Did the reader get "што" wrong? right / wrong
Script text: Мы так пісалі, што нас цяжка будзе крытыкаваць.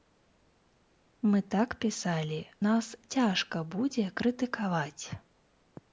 wrong